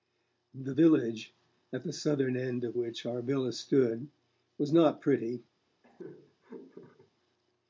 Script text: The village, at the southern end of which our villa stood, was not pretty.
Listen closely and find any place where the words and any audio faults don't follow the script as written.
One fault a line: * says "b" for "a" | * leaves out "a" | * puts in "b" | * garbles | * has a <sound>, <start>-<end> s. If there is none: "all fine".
* has a laugh, 5.8-7.1 s